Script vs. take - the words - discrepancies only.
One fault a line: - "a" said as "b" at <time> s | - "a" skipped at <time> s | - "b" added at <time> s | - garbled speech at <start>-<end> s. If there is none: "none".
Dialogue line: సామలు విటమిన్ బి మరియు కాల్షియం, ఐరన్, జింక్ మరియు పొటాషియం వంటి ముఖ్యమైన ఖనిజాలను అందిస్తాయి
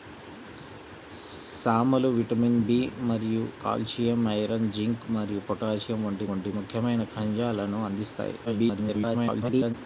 - "వంటి" added at 6.3 s
- garbled speech at 8.4-9.7 s